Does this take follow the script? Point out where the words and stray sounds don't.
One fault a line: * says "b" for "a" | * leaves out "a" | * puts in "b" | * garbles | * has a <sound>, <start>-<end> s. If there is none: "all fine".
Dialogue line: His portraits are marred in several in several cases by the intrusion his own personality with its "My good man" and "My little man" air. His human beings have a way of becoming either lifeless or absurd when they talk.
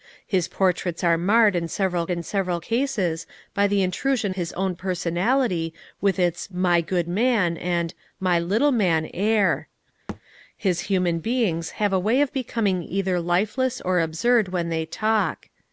* has a thud, 10.1-10.2 s